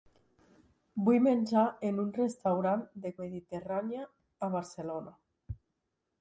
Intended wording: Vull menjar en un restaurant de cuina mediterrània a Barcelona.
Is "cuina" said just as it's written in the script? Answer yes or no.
no